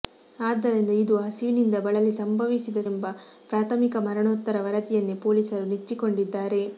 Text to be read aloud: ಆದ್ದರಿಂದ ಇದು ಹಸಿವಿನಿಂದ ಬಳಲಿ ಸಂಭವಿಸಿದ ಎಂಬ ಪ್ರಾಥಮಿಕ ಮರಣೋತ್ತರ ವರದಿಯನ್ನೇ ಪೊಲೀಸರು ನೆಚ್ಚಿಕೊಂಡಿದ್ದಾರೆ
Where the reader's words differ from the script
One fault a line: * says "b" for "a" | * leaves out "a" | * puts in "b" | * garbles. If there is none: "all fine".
all fine